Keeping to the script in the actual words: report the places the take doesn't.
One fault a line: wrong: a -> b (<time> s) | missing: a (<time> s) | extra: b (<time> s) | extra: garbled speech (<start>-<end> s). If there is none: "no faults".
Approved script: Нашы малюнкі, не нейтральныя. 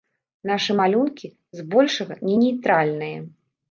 extra: збольшага (1.6 s)